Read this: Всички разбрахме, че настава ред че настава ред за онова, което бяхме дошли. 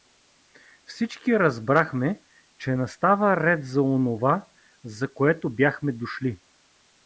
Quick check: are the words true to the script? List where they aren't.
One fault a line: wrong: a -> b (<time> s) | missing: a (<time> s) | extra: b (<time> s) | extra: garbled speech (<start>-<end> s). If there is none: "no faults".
wrong: че настава ред -> за онова (3.6 s)
missing: онова (5.1 s)